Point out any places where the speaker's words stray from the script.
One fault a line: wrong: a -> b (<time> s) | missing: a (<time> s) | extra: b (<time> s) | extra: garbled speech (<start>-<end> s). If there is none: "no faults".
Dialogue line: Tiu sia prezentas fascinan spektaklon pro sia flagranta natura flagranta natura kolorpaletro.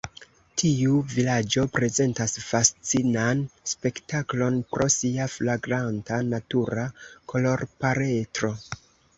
wrong: sia -> vilaĝo (1.1 s)
missing: flagranta natura (6.9 s)